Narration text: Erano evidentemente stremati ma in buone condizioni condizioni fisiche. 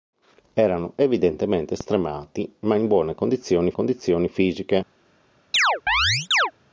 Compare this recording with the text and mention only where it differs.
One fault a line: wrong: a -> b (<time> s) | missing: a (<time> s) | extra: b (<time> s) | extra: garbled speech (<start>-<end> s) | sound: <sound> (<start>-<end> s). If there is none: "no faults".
sound: chirp (5.5-6.5 s)